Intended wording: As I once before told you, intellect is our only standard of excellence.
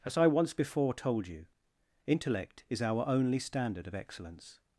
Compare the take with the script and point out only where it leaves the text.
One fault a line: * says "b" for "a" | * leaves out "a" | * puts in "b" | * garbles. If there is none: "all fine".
all fine